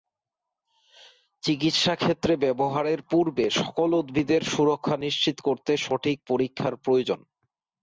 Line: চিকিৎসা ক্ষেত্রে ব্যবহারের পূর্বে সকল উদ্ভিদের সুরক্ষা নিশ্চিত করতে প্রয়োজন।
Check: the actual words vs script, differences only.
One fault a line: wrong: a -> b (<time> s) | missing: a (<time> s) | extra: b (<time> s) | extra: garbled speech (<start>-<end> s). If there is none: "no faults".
extra: সঠিক পরীক্ষার (5.8 s)